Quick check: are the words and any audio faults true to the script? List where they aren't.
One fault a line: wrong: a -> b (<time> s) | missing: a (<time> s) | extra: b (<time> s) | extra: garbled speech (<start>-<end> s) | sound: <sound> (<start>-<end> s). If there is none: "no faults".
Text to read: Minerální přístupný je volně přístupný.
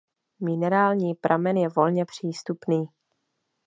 wrong: přístupný -> pramen (1.1 s)